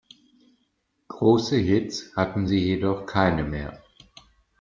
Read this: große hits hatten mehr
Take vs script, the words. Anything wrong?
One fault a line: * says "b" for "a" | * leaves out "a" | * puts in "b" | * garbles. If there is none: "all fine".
* puts in "sie jedoch keine"